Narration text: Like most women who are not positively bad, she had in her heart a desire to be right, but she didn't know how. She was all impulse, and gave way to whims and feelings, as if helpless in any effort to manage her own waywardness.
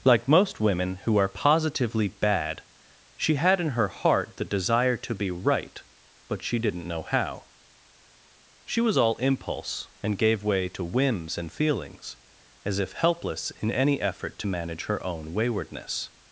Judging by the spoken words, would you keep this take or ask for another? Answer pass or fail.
fail